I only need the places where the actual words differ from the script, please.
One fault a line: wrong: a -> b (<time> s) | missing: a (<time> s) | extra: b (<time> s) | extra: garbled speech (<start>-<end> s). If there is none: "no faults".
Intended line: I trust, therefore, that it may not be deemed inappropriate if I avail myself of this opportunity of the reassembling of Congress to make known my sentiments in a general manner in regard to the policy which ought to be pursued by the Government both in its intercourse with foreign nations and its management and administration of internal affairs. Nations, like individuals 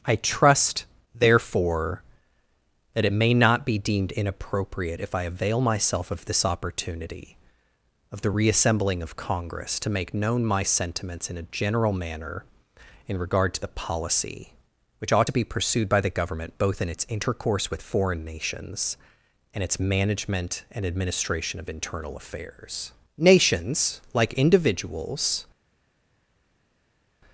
no faults